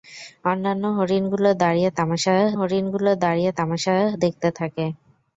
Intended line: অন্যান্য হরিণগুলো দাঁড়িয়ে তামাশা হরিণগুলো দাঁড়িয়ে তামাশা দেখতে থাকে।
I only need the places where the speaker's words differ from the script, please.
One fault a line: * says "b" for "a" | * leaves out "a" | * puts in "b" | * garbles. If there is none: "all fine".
all fine